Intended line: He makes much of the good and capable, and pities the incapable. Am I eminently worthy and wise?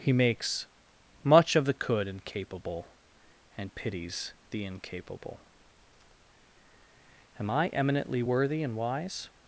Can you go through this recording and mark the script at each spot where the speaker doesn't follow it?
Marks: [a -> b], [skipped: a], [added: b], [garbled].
He makes much of the [good -> could] and capable, and pities the incapable. Am I eminently worthy and wise?